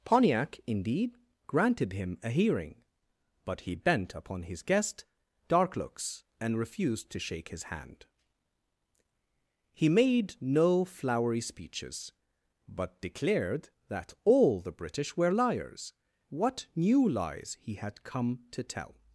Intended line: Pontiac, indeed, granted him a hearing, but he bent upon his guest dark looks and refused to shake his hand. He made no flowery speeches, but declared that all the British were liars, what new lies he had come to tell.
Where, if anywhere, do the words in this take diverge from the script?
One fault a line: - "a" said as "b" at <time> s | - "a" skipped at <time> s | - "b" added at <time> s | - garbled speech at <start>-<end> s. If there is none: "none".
none